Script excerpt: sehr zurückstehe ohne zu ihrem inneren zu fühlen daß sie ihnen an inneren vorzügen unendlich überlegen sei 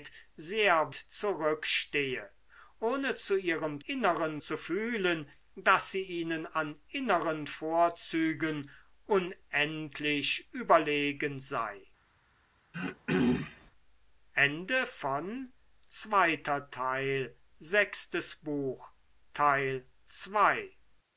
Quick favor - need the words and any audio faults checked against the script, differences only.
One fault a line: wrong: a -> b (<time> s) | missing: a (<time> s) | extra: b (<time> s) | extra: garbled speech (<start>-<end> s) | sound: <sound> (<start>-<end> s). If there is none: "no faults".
sound: throat clearing (12.7-13.7 s)